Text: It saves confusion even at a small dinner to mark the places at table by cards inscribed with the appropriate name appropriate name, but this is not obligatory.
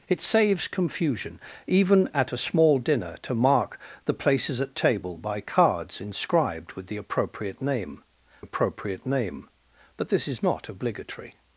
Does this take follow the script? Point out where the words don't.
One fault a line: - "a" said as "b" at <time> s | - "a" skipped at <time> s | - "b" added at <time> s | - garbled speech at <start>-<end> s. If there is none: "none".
none